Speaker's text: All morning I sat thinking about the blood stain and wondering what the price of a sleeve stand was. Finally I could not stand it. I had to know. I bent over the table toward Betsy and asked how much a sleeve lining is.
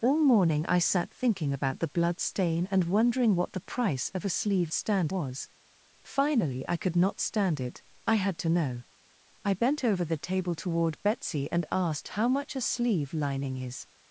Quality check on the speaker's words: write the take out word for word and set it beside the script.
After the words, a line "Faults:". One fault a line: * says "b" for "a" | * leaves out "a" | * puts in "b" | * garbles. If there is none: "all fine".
All morning I sat thinking about the blood stain and wondering what the price of a sleeve stand was. Finally I could not stand it. I had to know. I bent over the table toward Betsy and asked how much a sleeve lining is.
Faults:
all fine